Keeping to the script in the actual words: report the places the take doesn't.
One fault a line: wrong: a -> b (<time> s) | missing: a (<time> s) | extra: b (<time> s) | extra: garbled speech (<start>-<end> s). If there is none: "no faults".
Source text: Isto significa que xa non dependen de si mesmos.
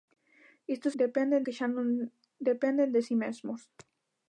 wrong: significa -> dependen (1.0 s)